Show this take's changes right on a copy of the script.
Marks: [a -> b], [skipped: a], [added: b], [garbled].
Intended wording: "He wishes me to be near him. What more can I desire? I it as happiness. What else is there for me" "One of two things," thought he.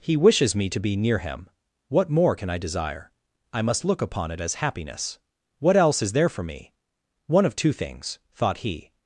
"He wishes me to be near him. What more can I desire? I [added: must look upon] it as happiness. What else is there for me" "One of two things," thought he.